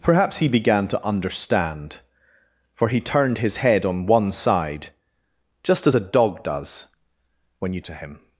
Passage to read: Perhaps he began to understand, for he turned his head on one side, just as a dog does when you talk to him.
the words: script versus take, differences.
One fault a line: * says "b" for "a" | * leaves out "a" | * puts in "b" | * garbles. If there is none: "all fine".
* leaves out "talk"